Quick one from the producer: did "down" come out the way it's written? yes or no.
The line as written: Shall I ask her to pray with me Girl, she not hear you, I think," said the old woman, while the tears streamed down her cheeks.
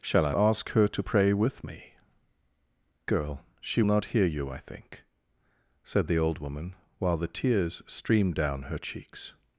yes